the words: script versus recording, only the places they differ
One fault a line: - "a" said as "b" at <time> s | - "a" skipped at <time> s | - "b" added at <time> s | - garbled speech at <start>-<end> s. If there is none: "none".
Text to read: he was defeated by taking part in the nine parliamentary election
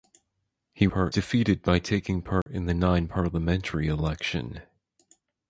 - "was" said as "part" at 0.9 s